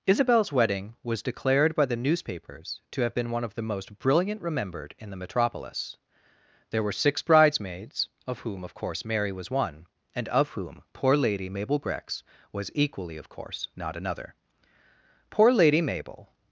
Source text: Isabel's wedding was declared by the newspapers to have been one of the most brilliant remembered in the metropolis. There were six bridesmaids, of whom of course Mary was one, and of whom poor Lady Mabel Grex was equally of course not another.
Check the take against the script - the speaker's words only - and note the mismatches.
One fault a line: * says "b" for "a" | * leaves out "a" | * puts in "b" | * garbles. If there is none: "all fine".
* puts in "Poor Lady Mabel"